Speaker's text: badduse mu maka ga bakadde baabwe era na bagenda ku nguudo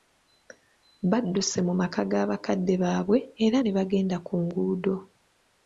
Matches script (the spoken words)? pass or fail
fail